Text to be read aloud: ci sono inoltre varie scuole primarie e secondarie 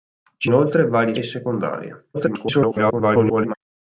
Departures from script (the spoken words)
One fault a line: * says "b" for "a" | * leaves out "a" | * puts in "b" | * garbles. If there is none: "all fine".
* leaves out "sono"
* leaves out "scuole primarie"
* garbles